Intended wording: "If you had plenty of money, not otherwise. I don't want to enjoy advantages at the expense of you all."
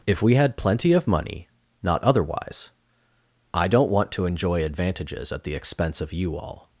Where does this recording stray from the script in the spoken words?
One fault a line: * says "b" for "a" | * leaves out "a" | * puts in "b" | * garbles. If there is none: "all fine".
* says "we" for "you"